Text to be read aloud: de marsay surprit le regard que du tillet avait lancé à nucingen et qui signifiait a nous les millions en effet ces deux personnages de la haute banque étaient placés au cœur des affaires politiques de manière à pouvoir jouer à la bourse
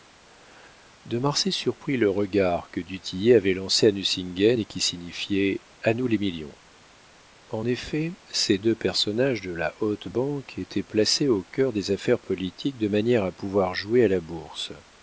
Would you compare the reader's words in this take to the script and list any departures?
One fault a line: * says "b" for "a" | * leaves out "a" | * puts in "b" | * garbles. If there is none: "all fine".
all fine